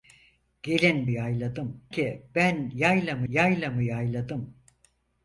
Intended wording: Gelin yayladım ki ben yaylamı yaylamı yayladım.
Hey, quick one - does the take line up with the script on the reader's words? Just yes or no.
yes